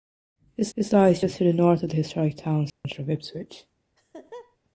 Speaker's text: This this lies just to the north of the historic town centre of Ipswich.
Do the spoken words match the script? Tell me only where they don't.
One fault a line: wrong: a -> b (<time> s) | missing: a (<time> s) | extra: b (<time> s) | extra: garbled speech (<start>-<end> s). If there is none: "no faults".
no faults